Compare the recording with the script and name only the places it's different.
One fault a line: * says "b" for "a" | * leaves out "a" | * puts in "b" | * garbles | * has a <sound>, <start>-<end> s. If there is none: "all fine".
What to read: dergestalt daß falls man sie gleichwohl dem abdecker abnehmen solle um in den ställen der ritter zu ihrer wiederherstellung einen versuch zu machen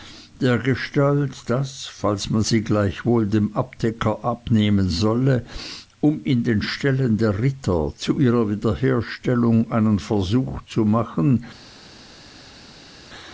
all fine